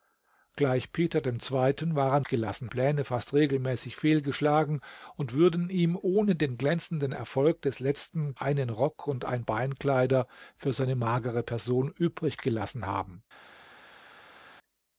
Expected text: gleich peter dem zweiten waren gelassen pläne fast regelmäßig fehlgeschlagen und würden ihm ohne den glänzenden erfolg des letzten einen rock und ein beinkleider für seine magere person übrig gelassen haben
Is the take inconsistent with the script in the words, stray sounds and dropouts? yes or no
no